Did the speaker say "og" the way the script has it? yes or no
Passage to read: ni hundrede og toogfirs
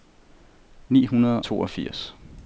no